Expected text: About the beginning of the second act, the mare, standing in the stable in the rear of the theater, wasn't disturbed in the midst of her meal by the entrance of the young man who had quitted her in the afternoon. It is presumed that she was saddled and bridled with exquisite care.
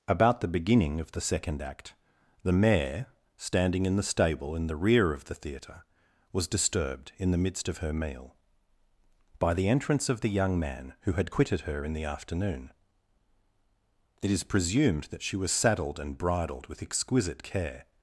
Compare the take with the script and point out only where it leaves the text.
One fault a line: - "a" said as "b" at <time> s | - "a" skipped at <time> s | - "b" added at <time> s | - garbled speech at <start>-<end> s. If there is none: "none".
- "wasn't" said as "was" at 6.3 s